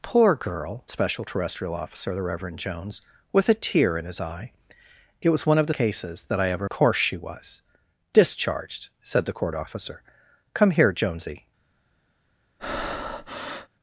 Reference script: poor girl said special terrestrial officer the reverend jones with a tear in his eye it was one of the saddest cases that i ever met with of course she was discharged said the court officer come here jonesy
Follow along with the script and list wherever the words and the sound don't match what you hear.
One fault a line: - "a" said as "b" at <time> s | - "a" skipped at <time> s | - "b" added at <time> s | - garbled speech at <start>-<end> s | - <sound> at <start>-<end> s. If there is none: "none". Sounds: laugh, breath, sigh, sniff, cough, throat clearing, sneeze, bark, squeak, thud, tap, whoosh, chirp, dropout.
- "said" skipped at 0.8 s
- "saddest" skipped at 5.7 s
- "met with of" skipped at 6.7 s
- breath at 12.6-13.7 s